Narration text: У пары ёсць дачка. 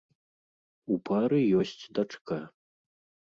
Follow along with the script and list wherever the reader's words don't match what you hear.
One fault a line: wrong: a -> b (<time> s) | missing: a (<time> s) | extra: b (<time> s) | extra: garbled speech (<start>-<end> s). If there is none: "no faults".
no faults